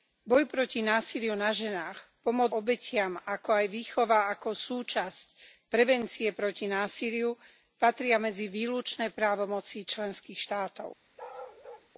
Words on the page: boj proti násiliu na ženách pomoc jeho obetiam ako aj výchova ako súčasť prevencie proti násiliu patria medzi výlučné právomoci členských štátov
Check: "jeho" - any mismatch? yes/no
yes